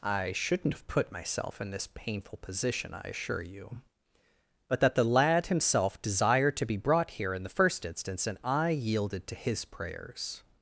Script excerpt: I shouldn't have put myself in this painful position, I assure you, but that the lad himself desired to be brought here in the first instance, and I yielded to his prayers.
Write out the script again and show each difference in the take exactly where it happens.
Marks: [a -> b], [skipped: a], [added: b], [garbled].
I shouldn't have put myself in this painful position, I assure you, but that the lad himself desired to be brought here in the first instance, and I yielded to his prayers.